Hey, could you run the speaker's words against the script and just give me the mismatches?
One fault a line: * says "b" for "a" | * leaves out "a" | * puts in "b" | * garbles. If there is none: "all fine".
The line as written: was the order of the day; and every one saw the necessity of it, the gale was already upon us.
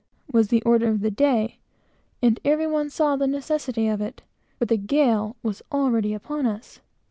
all fine